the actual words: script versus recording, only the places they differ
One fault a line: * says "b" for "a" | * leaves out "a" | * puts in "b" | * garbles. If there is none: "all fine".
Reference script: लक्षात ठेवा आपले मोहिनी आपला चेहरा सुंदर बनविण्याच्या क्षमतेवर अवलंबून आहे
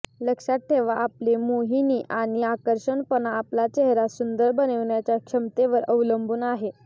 * puts in "आणि आकर्षकपणा"